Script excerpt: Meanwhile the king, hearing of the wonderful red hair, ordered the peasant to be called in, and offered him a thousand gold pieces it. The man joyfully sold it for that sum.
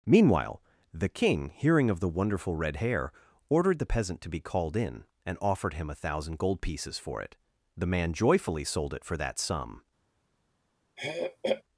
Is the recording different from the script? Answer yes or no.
yes